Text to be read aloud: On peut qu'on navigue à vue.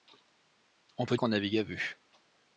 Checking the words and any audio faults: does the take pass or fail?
pass